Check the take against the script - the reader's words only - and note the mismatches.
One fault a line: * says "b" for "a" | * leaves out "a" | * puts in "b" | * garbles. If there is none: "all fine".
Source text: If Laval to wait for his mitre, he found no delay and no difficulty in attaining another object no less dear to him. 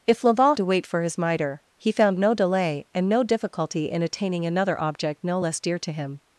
all fine